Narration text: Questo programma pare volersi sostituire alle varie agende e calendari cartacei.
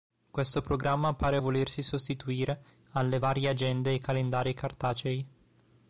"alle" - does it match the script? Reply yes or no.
yes